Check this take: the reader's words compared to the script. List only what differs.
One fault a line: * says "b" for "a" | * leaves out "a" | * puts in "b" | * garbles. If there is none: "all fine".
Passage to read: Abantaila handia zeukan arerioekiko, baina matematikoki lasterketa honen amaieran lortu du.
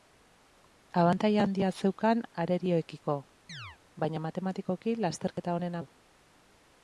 * leaves out "amaieran lortu"